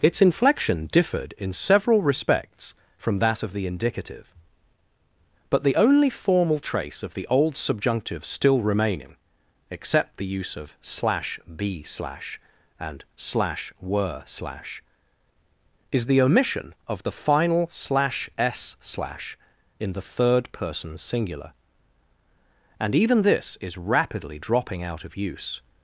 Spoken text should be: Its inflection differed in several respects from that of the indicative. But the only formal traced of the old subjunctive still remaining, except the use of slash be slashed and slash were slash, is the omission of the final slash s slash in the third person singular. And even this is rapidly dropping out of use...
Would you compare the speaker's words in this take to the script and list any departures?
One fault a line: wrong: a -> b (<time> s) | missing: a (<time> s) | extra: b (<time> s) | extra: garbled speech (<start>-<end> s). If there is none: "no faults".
wrong: traced -> trace (6.6 s)
wrong: slashed -> slash (11.8 s)